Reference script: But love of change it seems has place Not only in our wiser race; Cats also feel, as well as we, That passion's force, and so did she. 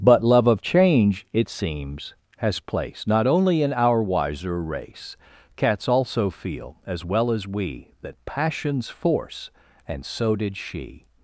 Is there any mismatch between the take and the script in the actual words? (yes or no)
no